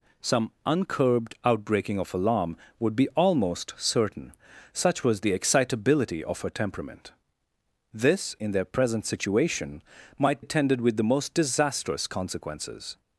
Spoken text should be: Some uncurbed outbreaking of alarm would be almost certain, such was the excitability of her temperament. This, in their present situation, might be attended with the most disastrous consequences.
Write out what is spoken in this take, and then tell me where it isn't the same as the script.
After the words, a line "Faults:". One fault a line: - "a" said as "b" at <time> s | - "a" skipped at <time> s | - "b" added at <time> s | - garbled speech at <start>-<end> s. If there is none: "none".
Some uncurbed outbreaking of alarm would be almost certain, such was the excitability of her temperament. This, in their present situation, might attended with the most disastrous consequences.
Faults:
- "be" skipped at 10.4 s